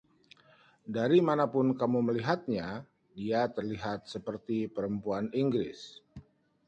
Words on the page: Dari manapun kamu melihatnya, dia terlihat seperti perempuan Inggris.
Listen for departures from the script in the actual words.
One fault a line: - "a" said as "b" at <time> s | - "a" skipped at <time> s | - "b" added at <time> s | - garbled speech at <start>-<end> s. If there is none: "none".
none